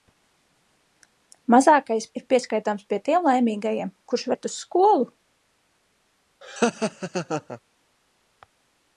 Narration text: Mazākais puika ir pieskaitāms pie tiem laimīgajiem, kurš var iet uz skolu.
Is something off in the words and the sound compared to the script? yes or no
yes